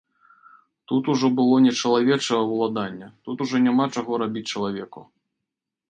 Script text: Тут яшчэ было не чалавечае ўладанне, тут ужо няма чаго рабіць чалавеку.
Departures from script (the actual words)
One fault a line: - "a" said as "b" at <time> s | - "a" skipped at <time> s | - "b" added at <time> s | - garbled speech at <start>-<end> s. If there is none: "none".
- "яшчэ" said as "ужо" at 1.1 s